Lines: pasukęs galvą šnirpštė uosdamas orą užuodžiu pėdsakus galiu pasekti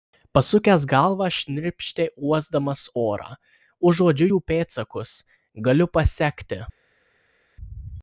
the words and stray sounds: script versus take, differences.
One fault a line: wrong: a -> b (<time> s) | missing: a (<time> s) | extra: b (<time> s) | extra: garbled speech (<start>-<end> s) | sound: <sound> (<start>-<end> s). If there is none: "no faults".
extra: jų (4.3 s)